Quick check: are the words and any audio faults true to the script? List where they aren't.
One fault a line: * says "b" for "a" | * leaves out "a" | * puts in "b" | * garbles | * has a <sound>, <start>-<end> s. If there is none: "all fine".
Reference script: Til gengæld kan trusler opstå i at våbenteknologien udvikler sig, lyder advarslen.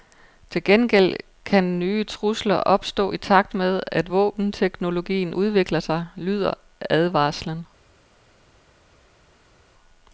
* puts in "nye"
* puts in "takt med"